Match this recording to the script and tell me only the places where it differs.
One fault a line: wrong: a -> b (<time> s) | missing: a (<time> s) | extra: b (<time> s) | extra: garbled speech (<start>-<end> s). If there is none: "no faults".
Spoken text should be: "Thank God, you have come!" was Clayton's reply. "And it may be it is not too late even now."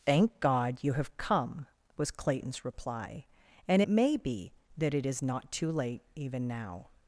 extra: that (4.8 s)